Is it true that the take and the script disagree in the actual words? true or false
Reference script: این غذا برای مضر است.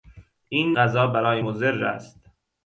false